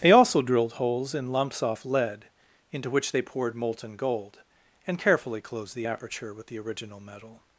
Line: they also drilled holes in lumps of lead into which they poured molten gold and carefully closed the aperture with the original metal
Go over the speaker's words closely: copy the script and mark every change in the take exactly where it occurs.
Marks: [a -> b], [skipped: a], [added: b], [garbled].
they also drilled holes in lumps [of -> off] lead into which they poured molten gold and carefully closed the aperture with the original metal